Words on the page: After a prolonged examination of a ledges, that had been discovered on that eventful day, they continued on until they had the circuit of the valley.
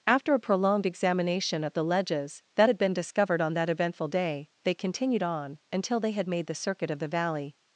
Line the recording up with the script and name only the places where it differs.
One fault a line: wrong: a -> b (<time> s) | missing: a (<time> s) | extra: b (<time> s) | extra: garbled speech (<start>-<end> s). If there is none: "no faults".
wrong: a -> the (1.7 s)
extra: made (6.3 s)